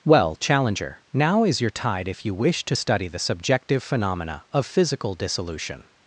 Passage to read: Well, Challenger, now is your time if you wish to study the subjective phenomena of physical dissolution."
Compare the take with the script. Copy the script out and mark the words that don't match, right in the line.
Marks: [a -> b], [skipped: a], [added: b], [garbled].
Well, Challenger, now is your [time -> tide] if you wish to study the subjective phenomena of physical dissolution."